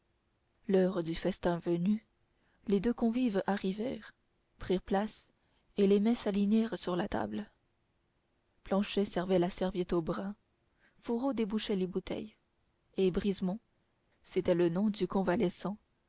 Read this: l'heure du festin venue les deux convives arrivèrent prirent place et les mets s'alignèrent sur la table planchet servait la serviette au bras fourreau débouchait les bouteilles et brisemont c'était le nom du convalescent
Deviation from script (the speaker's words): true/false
false